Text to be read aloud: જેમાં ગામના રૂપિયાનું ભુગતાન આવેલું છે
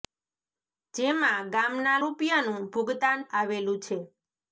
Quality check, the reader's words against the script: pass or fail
pass